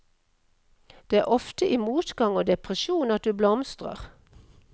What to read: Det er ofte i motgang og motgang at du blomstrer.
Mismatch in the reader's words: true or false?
true